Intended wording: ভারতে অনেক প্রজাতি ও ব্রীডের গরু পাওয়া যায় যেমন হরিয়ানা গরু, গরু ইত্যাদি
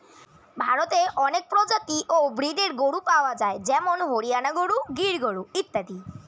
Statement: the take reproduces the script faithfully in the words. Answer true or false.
false